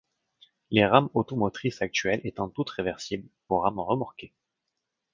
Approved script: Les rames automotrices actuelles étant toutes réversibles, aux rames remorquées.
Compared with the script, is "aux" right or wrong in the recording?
right